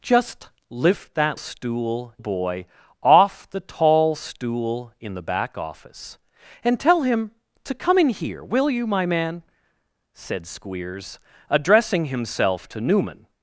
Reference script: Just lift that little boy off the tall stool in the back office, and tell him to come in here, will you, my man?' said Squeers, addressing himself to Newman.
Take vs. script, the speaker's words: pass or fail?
fail